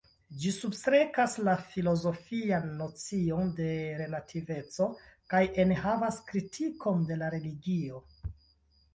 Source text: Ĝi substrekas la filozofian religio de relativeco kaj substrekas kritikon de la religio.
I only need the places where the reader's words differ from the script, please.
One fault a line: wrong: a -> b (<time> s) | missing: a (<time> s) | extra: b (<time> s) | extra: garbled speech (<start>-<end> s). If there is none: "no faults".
wrong: religio -> nocion (2.8 s)
wrong: substrekas -> enhavas (5.6 s)